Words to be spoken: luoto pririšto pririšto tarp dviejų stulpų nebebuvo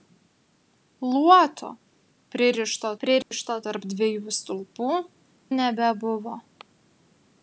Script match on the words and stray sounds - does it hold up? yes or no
no